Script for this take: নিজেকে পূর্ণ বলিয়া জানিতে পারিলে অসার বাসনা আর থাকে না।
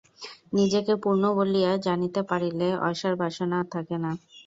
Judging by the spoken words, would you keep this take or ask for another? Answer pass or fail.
pass